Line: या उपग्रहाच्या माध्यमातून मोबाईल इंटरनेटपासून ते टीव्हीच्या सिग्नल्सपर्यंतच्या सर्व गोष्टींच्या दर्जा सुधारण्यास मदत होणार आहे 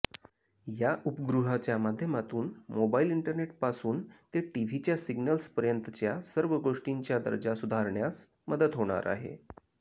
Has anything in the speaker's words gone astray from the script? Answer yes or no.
no